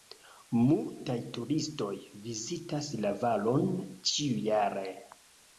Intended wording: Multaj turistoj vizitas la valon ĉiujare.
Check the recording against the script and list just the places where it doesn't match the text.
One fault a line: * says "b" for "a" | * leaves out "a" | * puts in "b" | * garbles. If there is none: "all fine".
all fine